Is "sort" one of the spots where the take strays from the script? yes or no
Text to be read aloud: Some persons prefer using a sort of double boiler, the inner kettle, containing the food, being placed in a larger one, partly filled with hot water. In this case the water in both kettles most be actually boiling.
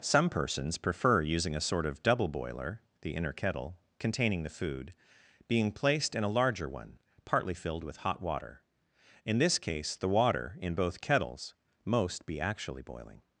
no